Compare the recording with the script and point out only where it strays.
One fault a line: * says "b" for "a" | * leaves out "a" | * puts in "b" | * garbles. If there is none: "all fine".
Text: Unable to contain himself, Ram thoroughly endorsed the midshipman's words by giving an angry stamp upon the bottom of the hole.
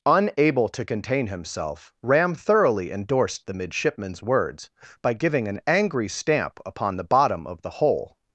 all fine